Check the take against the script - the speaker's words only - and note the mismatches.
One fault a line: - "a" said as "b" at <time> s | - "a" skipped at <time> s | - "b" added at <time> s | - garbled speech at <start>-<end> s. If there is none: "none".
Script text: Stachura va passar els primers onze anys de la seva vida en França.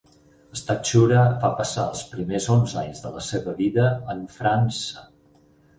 none